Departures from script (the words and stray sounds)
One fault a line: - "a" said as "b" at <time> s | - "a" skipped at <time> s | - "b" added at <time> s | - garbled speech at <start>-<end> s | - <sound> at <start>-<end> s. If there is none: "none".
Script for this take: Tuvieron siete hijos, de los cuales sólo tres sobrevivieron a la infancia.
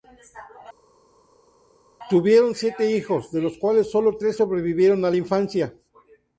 none